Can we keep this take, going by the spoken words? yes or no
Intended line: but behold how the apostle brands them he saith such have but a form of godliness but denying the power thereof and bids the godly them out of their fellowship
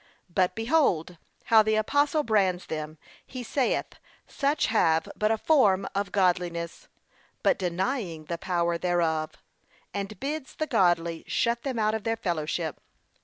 no